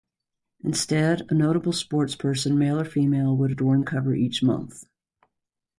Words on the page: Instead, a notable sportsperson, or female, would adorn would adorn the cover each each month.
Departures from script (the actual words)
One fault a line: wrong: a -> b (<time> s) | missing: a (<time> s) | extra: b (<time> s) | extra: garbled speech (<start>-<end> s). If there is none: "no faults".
extra: male (2.5 s)
missing: would adorn (3.8 s)
missing: each (4.4 s)